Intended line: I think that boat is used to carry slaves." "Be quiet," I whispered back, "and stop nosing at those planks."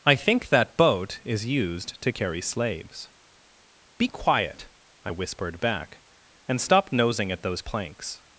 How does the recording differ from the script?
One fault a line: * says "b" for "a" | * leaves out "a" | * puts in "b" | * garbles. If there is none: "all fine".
all fine